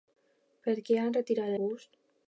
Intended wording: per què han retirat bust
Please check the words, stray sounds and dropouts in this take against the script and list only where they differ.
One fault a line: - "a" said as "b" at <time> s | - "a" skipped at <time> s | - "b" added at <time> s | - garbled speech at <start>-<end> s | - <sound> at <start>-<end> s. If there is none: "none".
none